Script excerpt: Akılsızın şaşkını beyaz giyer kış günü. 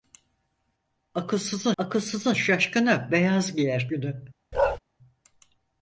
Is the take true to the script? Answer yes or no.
no